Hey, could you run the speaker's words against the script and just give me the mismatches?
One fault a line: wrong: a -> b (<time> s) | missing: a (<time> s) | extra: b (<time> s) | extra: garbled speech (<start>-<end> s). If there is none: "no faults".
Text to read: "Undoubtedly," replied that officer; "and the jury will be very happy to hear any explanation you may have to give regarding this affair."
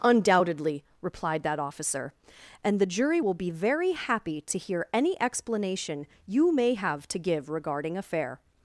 missing: this (8.0 s)